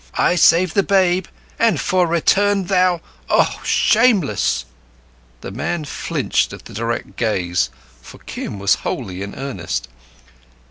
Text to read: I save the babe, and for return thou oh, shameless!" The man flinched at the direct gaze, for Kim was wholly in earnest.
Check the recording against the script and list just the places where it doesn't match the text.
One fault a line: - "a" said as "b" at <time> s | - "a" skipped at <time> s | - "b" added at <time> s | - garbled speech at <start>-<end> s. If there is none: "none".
none